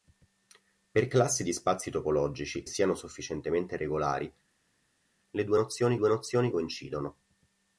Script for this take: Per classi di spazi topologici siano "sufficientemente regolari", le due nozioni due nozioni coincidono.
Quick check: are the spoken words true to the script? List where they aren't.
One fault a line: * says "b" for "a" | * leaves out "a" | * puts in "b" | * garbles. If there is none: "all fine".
all fine